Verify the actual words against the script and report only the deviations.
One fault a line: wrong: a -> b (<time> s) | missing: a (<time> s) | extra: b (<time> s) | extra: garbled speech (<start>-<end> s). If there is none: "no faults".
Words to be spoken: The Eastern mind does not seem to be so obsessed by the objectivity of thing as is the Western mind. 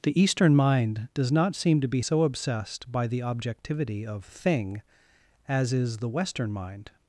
no faults